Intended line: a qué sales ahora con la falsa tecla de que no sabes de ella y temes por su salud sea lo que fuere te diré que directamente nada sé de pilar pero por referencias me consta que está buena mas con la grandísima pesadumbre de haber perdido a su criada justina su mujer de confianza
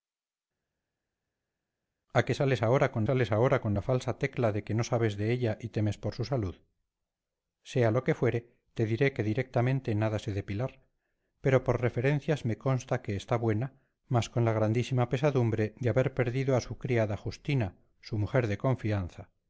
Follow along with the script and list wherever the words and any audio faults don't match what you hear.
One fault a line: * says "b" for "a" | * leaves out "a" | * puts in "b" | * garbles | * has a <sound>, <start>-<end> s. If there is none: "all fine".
* puts in "sales ahora con"